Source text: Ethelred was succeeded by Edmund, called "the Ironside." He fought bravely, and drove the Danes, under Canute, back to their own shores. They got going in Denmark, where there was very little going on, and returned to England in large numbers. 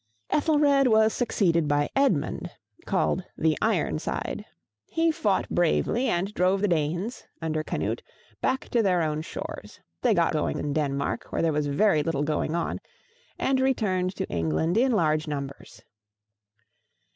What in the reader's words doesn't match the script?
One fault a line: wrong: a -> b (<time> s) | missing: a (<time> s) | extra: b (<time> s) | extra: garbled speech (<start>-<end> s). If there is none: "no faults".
no faults